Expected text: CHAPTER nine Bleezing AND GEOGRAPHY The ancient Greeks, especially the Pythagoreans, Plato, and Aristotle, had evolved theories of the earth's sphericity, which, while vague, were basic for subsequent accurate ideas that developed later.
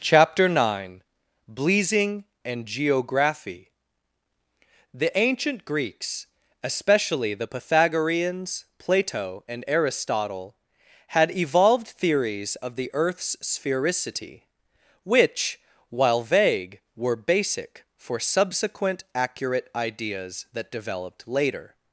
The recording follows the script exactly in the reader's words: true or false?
true